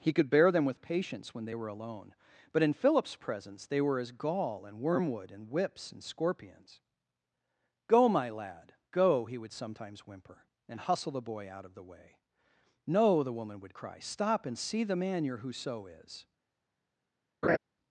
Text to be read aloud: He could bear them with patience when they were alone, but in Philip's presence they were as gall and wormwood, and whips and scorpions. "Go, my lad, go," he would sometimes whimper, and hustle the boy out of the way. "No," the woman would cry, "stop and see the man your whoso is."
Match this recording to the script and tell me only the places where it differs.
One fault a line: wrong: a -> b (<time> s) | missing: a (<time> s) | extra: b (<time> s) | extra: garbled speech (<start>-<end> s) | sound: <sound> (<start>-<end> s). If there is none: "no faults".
sound: laugh (17.4-17.6 s)